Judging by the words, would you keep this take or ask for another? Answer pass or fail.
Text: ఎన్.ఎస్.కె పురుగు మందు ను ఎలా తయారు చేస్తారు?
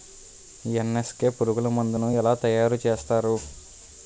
pass